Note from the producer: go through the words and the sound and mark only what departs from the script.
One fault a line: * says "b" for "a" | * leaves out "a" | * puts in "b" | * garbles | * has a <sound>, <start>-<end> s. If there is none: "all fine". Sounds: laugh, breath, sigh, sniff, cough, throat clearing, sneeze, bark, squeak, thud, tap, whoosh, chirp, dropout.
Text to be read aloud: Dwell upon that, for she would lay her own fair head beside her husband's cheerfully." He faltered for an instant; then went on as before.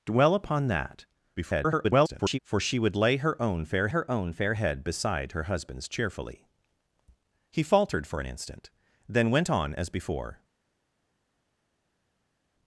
* garbles
* puts in "her own fair"